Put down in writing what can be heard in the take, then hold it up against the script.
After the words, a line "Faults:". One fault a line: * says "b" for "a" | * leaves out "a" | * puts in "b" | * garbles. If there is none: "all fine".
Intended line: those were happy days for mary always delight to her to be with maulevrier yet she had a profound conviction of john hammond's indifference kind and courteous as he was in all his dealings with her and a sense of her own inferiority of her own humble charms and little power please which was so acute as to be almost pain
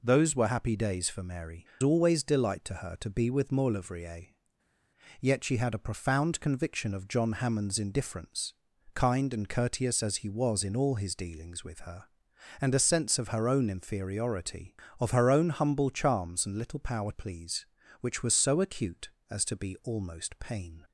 those were happy days for mary always delight to her to be with maulevrier yet she had a profound conviction of john hammond's indifference kind and courteous as he was in all his dealings with her and a sense of her own inferiority of her own humble charms and little power please which was so acute as to be almost pain
Faults:
all fine